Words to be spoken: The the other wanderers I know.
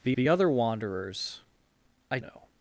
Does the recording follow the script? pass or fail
pass